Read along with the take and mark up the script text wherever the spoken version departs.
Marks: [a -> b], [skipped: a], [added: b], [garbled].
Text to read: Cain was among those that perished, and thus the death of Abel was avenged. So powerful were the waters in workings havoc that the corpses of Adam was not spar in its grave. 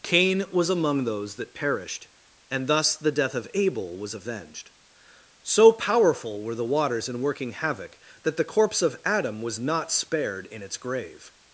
Cain was among those that perished, and thus the death of Abel was avenged. So powerful were the waters in [workings -> working] havoc that the [corpses -> corpse] of Adam was not [spar -> spared] in its grave.